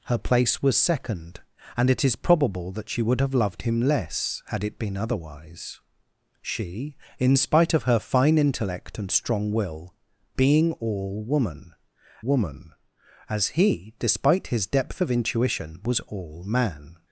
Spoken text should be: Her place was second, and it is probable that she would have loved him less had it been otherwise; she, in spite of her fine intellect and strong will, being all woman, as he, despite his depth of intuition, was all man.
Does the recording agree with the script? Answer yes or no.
no